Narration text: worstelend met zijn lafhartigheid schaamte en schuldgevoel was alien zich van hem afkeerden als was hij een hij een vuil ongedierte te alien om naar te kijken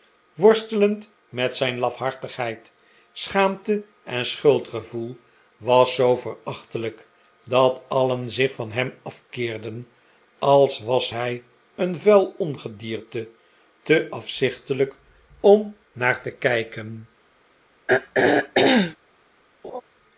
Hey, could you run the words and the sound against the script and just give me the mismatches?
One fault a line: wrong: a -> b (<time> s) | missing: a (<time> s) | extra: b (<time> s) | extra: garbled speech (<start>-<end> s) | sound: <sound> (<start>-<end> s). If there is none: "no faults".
extra: zoo verachtelijk dat (6.0 s)
missing: hij een (12.0 s)
wrong: alien -> afzichtelijk (14.1 s)
sound: throat clearing (17.9-19.0 s)
sound: laugh (19.6-19.8 s)